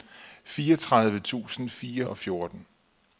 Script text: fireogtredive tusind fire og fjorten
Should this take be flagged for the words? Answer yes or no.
no